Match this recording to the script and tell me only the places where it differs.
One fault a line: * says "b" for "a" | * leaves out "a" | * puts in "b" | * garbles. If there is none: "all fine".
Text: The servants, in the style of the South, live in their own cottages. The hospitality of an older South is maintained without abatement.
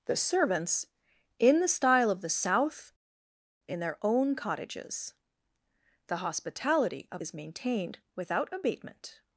* leaves out "live"
* leaves out "an older South"